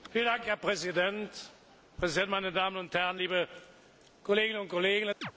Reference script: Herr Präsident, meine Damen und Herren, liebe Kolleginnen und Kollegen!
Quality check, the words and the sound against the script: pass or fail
fail